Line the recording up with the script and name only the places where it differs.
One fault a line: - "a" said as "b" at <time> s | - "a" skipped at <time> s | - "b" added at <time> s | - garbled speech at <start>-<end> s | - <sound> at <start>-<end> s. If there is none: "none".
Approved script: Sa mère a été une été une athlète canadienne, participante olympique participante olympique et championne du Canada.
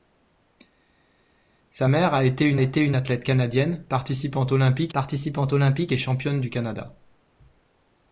none